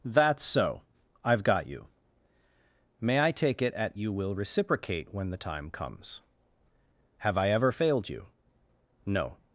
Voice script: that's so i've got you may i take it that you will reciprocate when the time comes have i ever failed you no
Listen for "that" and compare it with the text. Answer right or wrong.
wrong